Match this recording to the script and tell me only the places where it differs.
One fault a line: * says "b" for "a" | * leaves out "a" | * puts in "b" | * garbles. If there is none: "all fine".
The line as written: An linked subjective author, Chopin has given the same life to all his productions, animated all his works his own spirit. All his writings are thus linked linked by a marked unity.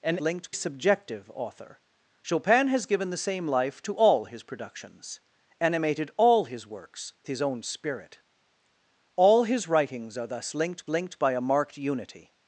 all fine